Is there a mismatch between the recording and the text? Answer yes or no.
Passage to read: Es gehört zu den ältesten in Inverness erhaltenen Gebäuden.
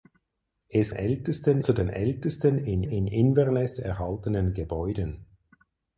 yes